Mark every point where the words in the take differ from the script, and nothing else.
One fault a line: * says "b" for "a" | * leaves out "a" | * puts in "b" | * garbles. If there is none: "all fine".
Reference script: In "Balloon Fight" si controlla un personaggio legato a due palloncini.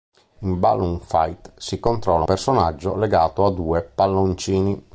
* leaves out "un"